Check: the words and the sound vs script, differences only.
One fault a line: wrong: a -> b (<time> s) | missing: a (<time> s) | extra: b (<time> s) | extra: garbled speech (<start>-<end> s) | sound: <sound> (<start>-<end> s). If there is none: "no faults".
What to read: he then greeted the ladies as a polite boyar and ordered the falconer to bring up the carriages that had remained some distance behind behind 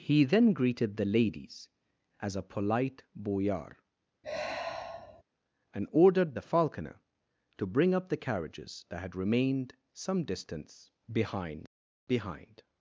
sound: sigh (4.2-5.2 s)